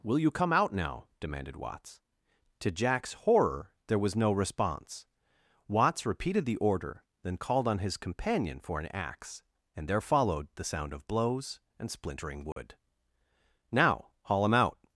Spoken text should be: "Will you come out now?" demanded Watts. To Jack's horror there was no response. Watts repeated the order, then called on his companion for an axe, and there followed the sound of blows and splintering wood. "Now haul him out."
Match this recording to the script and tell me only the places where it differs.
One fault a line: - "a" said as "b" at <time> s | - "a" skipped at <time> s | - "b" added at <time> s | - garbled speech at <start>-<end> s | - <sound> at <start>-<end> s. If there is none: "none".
- dropout at 12.5-12.6 s